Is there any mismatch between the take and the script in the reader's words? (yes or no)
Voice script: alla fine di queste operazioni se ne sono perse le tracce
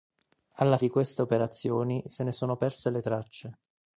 yes